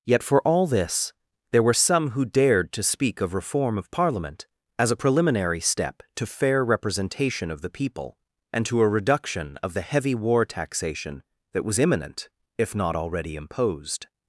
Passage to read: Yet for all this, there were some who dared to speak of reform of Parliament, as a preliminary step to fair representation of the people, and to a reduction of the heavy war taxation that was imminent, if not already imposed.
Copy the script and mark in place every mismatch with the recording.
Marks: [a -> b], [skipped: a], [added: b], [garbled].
Yet for all this, there were some who dared to speak of reform of Parliament, as a preliminary step to fair representation of the people, and to a reduction of the heavy war taxation that was imminent, if not already imposed.